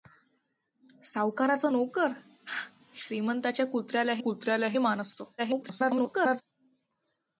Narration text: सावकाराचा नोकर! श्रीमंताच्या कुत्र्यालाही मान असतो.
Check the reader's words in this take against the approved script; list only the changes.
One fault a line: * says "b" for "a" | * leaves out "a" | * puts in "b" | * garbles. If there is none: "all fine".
* puts in "कुत्र्यालाही"
* garbles